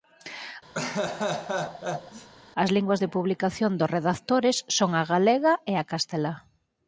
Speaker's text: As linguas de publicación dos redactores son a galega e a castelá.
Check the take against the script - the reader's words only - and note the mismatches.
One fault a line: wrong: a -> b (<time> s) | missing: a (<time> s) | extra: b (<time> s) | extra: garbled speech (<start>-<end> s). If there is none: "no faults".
no faults